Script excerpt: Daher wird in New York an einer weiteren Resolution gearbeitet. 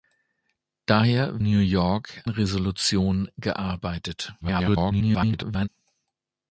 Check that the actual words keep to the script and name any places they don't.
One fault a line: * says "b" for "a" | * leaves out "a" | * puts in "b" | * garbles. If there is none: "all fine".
* leaves out "wird in"
* leaves out "an einer weiteren"
* garbles